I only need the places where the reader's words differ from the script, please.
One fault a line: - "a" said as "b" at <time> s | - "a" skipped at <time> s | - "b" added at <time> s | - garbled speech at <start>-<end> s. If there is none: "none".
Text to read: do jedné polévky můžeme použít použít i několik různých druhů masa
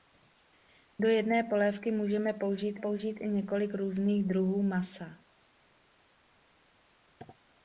none